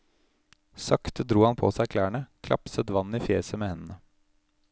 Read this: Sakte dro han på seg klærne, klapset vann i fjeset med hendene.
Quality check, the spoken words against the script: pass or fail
pass